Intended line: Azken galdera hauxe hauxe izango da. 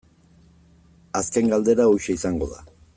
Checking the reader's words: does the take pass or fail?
fail